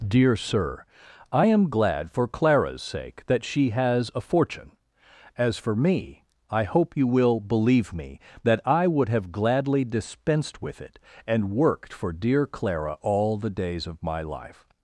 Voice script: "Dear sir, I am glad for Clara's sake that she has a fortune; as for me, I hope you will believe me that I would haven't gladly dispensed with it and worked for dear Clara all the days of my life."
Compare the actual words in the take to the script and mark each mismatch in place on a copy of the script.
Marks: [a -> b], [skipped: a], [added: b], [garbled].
"Dear sir, I am glad for Clara's sake that she has a fortune; as for me, I hope you will believe me that I would [haven't -> have] gladly dispensed with it and worked for dear Clara all the days of my life."